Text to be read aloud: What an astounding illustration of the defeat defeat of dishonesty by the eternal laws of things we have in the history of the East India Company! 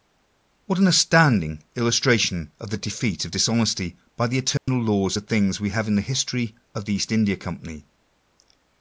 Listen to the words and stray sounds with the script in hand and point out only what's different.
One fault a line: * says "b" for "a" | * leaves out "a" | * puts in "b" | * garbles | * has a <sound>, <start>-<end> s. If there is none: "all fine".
* leaves out "defeat"
* has a dropout, 4.6-4.7 s